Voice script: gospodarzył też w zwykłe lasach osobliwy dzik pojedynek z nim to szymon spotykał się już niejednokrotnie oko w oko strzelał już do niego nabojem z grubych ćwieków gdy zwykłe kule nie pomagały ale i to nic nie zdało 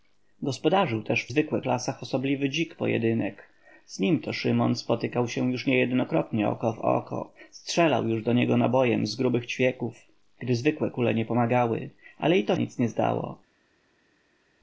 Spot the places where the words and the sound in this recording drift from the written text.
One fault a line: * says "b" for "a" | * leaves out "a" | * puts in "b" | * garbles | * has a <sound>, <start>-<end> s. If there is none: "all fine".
all fine